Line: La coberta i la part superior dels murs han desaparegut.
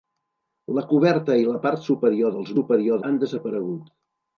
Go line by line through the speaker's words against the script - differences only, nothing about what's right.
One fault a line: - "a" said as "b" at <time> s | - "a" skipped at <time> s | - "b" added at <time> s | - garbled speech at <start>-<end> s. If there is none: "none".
- "murs" said as "superior" at 2.6 s